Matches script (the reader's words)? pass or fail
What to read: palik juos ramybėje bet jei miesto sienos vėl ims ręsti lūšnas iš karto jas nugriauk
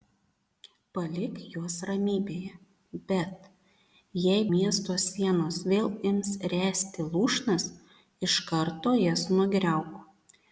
pass